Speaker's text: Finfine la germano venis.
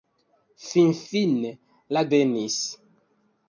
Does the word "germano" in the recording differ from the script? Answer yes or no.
yes